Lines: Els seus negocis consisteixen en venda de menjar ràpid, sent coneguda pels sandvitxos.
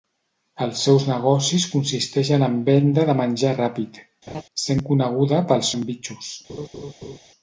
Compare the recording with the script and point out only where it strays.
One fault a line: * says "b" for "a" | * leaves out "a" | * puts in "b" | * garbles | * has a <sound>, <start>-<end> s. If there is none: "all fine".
* has a laugh, 4.3-4.4 s
* has a laugh, 6.5-7.2 s